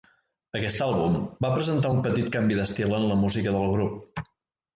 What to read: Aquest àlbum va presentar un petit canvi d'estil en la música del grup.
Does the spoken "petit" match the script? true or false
true